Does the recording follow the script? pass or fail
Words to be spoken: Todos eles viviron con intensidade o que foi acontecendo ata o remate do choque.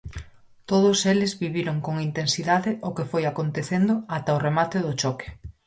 pass